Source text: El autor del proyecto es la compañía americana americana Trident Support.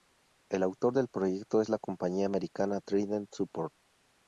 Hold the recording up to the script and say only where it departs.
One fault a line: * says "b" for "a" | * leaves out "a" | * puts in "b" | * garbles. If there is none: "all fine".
* leaves out "americana"